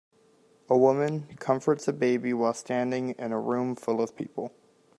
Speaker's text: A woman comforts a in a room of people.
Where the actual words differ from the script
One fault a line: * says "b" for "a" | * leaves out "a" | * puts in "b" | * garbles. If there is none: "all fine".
* puts in "baby while standing"
* puts in "full"